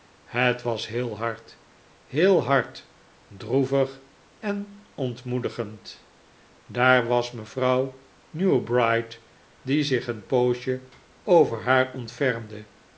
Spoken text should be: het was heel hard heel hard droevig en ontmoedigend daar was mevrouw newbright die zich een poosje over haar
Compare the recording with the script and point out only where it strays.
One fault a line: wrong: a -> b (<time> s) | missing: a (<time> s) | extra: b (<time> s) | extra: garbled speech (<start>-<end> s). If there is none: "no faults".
no faults